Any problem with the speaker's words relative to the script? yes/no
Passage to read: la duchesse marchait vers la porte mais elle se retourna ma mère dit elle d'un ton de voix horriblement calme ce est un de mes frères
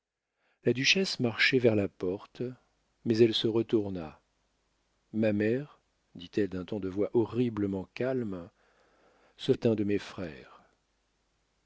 no